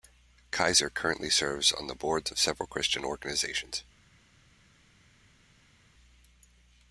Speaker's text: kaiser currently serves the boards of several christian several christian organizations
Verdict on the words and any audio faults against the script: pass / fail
fail